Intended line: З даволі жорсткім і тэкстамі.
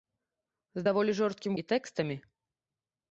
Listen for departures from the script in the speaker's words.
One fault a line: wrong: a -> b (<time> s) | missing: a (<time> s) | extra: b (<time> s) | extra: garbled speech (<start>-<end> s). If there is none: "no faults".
no faults